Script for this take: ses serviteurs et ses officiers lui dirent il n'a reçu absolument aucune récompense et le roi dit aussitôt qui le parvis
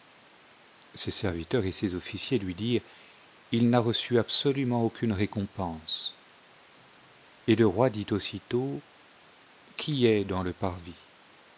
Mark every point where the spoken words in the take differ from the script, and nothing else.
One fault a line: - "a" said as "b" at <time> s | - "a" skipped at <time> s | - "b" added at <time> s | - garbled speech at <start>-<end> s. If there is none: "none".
- "est dans" added at 10.1 s